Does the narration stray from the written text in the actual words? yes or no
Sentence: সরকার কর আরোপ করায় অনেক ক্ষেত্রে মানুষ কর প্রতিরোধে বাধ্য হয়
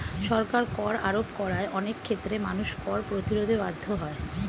no